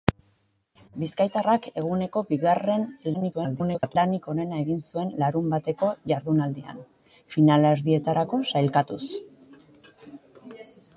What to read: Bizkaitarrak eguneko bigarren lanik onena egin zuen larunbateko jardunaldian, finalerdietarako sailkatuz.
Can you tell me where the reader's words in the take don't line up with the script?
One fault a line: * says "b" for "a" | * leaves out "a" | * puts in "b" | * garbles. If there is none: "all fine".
* garbles